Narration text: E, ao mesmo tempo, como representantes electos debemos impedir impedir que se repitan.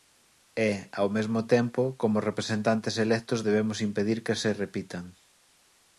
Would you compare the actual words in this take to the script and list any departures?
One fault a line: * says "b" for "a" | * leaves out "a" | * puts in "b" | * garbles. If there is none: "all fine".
* leaves out "impedir"